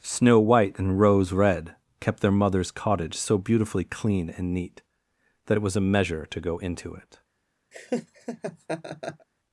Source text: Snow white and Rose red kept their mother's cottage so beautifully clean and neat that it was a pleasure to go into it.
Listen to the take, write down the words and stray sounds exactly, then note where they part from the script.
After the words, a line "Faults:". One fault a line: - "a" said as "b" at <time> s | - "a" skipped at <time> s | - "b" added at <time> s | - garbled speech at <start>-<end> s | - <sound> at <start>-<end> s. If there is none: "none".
Snow white and Rose red kept their mother's cottage so beautifully clean and neat that it was a measure to go into it.
Faults:
- "pleasure" said as "measure" at 5.8 s
- laugh at 7.7-9.3 s